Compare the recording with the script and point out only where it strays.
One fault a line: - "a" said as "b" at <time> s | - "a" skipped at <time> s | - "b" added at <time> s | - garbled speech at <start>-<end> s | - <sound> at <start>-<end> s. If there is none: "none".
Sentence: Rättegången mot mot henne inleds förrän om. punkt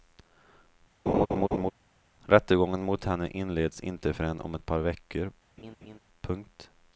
- laugh at 1.1-1.7 s
- "mot" skipped at 3.0 s
- "inte" added at 3.8 s
- "ett par veckor" added at 4.5 s
- laugh at 5.6-6.0 s